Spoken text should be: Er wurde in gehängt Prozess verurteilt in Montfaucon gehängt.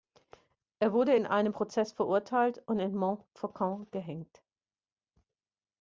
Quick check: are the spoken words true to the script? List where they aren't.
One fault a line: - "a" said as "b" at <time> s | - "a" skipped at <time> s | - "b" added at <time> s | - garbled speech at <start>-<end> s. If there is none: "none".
- "gehängt" said as "einem" at 1.3 s
- "und" added at 2.7 s